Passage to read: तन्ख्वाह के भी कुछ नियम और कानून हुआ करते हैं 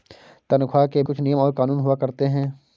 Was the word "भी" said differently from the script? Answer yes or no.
yes